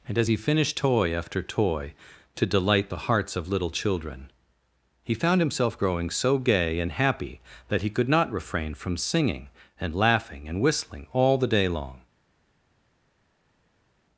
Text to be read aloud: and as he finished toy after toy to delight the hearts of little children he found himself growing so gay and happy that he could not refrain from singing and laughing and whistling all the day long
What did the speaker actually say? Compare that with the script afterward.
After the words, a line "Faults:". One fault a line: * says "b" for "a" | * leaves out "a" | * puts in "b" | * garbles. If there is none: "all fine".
and as he finished toy after toy to delight the hearts of little children he found himself growing so gay and happy that he could not refrain from singing and laughing and whistling all the day long
Faults:
all fine